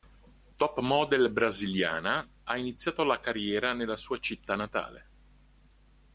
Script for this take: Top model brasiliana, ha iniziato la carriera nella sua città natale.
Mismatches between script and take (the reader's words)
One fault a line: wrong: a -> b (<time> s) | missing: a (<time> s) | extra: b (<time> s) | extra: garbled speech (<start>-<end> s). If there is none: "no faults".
no faults